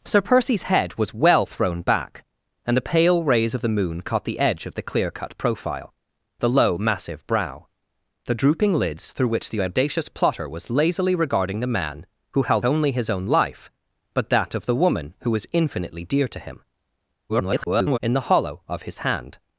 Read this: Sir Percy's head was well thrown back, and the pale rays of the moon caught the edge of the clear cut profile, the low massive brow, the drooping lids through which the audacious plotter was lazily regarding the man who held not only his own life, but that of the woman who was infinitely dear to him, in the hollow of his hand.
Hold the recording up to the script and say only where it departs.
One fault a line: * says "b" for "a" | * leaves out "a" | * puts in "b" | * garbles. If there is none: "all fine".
* leaves out "not"
* garbles